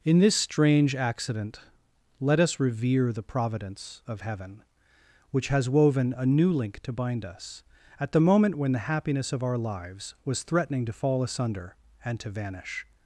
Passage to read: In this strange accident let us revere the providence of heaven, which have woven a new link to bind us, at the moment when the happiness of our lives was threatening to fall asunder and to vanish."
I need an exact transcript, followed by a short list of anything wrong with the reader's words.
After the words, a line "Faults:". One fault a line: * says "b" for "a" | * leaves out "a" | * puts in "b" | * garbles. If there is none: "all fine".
In this strange accident let us revere the providence of heaven, which has woven a new link to bind us, at the moment when the happiness of our lives was threatening to fall asunder and to vanish."
Faults:
* says "has" for "have"